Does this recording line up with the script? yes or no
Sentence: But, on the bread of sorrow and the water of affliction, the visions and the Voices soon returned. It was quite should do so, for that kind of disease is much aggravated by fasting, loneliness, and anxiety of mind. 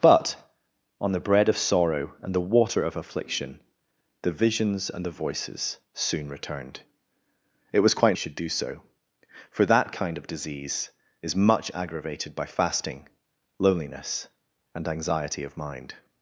yes